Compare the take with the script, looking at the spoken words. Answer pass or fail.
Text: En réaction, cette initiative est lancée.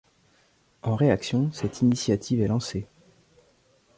pass